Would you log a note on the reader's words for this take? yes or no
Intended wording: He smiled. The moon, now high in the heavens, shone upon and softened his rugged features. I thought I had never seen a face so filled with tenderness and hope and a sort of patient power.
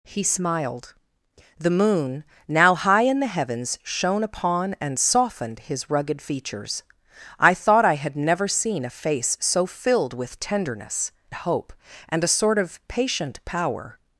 yes